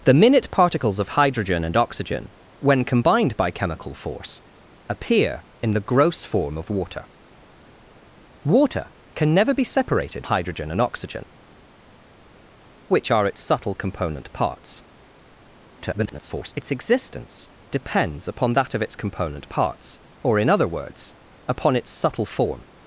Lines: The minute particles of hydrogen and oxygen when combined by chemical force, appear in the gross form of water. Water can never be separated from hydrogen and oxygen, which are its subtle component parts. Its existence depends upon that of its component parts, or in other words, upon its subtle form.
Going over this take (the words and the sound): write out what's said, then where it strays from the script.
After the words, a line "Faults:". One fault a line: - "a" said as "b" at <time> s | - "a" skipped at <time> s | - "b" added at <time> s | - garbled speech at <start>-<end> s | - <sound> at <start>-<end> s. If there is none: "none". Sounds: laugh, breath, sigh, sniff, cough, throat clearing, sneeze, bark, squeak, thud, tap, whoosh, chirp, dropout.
The minute particles of hydrogen and oxygen when combined by chemical force, appear in the gross form of water. Water can never be separated hydrogen and oxygen, which are its subtle component parts. [garbled] Its existence depends upon that of its component parts, or in other words, upon its subtle form.
Faults:
- "from" skipped at 10.3 s
- garbled speech at 15.8-16.5 s